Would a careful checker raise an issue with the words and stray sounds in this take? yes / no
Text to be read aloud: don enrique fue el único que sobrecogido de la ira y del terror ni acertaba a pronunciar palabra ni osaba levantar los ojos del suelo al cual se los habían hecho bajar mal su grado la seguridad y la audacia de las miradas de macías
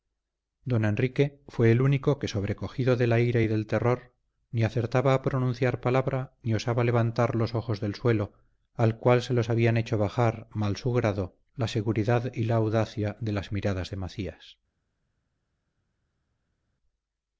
no